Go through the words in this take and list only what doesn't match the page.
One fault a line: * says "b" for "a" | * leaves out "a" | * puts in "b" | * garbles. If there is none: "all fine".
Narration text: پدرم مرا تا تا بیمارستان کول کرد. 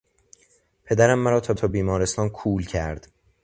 all fine